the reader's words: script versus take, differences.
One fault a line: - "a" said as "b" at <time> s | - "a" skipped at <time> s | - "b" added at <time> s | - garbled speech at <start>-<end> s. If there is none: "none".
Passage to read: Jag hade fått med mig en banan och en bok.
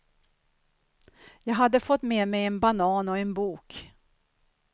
none